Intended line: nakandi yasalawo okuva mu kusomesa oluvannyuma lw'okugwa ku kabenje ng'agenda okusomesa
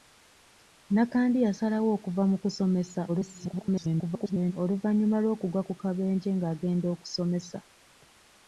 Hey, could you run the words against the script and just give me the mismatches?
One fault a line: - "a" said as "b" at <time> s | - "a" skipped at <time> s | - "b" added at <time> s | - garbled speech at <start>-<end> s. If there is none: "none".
- garbled speech at 3.1-4.5 s